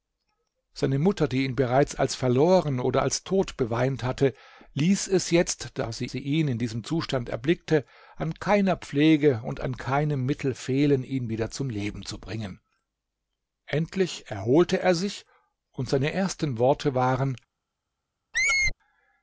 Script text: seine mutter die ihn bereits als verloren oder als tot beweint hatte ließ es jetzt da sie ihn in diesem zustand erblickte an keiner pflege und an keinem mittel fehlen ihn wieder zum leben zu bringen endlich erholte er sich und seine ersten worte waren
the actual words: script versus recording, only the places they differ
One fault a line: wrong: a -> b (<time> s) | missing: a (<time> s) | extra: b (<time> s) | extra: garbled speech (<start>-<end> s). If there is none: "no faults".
extra: sie (6.0 s)